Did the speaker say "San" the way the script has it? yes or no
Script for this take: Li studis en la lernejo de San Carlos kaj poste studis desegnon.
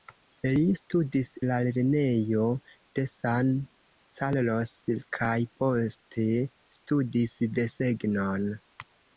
yes